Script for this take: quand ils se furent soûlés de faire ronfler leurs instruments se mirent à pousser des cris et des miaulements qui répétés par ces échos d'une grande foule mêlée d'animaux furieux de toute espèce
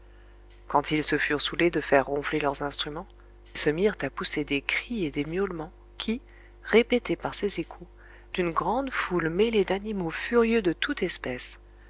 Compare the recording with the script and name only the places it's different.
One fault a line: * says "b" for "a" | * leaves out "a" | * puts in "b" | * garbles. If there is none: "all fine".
all fine